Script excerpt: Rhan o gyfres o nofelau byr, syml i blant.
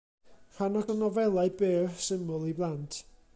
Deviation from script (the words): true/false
true